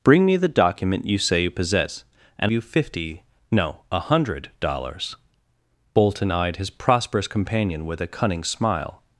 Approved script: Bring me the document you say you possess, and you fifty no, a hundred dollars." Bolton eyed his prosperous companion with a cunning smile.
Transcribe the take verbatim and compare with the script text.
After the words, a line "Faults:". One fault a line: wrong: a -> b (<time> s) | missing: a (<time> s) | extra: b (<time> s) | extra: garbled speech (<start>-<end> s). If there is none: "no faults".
Bring me the document you say you possess, and you fifty no, a hundred dollars." Bolton eyed his prosperous companion with a cunning smile.
Faults:
no faults